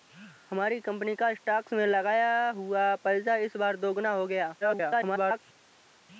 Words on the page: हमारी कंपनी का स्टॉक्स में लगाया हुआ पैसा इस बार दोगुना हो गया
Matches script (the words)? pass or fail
fail